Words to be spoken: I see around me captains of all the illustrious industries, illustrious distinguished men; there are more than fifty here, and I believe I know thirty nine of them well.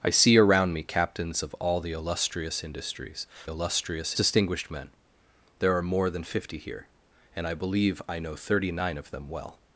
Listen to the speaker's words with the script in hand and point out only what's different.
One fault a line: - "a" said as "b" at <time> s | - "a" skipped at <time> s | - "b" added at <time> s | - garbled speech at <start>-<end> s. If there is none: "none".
none